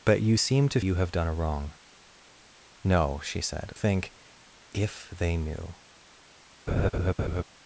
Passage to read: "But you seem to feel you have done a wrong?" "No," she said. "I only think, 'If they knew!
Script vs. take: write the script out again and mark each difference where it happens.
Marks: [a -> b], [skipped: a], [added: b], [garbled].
"But you seem to [skipped: feel] you have done a wrong?" "No," she said. [skipped: "I only] think, 'If they knew!